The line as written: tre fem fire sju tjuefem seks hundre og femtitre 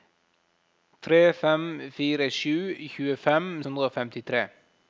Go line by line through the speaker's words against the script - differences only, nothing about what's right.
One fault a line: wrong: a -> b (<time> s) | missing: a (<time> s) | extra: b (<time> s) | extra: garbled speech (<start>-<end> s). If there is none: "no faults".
missing: seks (3.5 s)